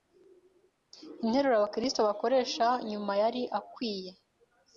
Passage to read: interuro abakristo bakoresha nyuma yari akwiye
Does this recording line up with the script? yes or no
yes